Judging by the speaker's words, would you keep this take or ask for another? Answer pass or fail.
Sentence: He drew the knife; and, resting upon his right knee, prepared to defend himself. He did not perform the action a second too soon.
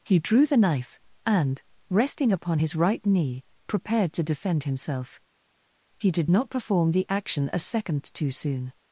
pass